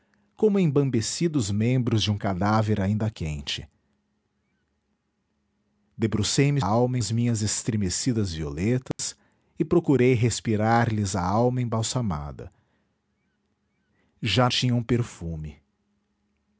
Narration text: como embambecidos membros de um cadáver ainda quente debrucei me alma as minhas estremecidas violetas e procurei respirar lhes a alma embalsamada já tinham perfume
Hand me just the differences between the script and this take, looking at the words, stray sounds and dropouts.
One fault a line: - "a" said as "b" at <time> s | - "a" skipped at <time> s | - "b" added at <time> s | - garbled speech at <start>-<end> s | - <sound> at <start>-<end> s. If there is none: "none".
- dropout at 8.9-9.0 s